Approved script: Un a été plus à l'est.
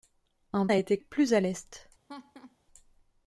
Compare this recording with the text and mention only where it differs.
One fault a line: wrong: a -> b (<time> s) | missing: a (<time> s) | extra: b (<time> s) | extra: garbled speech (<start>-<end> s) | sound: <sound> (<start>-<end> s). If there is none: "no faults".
sound: laugh (2.1-2.6 s)